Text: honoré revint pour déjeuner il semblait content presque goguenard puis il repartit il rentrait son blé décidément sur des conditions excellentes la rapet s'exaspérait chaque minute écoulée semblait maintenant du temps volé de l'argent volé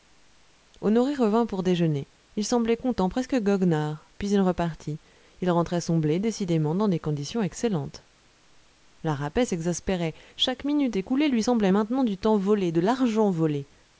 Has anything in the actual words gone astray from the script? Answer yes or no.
yes